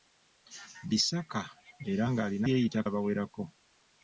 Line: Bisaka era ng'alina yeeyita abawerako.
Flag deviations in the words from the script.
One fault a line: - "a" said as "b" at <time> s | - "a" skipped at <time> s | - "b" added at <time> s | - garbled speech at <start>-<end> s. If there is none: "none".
none